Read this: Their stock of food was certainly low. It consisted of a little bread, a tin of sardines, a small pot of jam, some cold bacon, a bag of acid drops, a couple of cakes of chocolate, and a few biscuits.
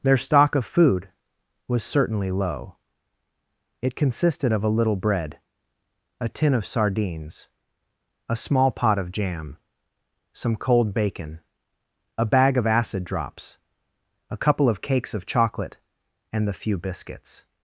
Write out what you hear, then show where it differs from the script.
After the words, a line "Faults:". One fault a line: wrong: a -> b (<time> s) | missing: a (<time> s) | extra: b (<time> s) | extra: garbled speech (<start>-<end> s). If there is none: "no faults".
Their stock of food was certainly low. It consisted of a little bread, a tin of sardines, a small pot of jam, some cold bacon, a bag of acid drops, a couple of cakes of chocolate, and the few biscuits.
Faults:
wrong: a -> the (16.5 s)